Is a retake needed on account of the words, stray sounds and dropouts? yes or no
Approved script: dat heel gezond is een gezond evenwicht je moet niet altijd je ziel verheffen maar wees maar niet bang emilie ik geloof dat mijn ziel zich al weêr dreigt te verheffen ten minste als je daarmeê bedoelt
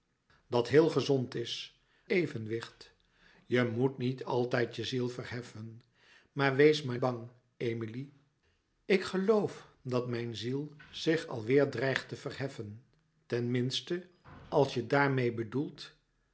yes